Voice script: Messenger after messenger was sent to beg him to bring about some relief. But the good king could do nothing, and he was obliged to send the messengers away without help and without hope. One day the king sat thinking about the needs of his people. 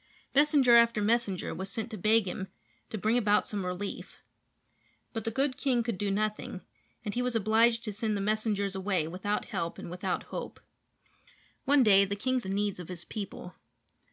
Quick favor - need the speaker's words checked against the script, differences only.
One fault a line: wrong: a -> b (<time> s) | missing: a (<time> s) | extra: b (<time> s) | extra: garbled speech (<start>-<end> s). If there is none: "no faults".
missing: sat thinking about (12.4 s)